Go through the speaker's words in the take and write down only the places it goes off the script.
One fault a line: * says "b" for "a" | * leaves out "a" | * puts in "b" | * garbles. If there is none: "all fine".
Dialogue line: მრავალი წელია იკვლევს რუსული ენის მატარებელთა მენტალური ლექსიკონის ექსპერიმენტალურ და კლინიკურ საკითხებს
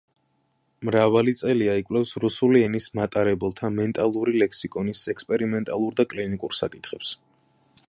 all fine